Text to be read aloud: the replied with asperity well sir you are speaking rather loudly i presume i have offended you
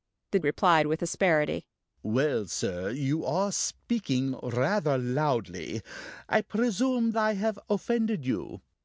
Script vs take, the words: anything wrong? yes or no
no